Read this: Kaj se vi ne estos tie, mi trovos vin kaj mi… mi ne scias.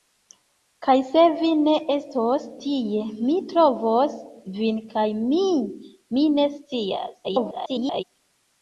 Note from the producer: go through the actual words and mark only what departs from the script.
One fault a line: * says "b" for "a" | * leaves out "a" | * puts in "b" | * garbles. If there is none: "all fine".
* garbles